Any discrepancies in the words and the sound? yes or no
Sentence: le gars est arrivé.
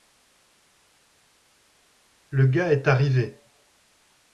no